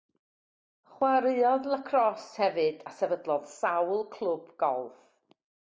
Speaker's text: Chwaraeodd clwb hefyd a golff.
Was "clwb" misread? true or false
true